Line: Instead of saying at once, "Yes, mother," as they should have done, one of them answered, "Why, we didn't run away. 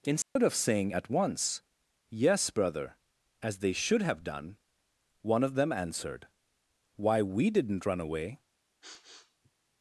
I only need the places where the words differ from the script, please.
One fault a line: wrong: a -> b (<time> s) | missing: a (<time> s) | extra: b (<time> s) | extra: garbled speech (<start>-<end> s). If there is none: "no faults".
wrong: mother -> brother (2.5 s)